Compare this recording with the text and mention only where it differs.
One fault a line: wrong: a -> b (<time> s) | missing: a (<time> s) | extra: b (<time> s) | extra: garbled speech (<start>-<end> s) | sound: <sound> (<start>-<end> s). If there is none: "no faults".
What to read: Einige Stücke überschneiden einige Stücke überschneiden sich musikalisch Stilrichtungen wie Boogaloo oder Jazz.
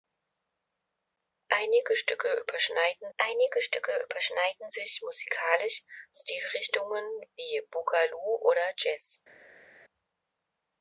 no faults